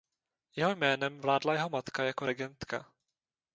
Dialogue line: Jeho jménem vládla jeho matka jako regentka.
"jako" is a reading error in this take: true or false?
false